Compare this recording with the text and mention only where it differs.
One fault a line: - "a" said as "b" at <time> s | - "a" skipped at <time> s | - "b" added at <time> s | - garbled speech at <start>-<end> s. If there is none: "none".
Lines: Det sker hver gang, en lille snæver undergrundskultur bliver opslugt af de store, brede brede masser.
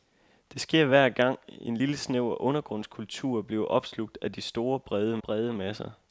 none